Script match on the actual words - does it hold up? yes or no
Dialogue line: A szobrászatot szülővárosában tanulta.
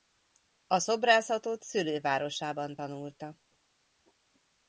yes